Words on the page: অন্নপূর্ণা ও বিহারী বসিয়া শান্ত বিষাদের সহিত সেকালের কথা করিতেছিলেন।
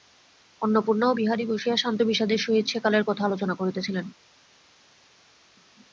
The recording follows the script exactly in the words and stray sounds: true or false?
false